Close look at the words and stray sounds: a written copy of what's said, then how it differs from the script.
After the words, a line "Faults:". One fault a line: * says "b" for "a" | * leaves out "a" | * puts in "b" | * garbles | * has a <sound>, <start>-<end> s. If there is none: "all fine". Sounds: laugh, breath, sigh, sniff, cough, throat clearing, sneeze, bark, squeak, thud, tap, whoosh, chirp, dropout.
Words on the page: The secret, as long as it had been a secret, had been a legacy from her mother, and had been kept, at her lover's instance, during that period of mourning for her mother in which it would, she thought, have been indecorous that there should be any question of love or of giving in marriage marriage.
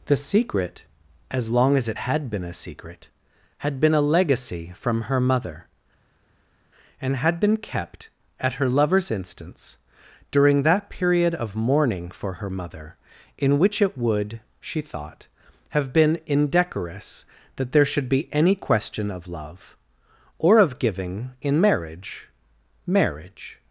The secret, as long as it had been a secret, had been a legacy from her mother, and had been kept, at her lover's instance, during that period of mourning for her mother in which it would, she thought, have been indecorous that there should be any question of love or of giving in marriage marriage.
Faults:
all fine